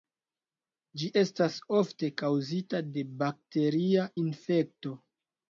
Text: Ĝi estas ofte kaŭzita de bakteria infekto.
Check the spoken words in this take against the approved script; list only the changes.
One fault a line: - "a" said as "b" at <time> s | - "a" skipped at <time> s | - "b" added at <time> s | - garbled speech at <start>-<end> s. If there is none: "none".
none